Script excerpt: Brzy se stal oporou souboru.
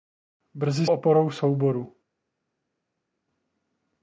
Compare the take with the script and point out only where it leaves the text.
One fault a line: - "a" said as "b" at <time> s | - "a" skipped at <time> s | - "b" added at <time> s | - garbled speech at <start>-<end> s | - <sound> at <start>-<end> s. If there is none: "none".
- "se stal" skipped at 0.9 s